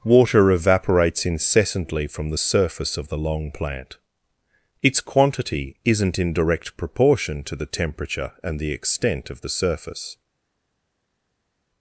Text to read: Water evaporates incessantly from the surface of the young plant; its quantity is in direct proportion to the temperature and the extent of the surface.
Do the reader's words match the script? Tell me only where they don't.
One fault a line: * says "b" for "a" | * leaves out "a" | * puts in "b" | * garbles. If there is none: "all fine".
* says "long" for "young"
* says "isn't" for "is"